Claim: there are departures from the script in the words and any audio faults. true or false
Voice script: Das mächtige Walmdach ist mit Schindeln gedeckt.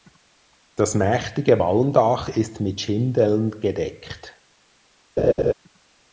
true